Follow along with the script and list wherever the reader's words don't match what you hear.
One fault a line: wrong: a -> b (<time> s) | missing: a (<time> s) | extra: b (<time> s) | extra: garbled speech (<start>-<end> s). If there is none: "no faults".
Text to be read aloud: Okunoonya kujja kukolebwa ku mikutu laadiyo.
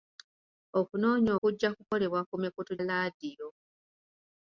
no faults